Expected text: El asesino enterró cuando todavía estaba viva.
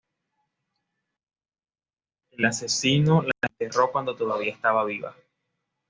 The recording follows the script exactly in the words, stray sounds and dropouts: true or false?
false